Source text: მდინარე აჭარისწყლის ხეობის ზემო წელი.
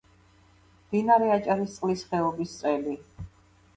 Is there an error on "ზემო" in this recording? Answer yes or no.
yes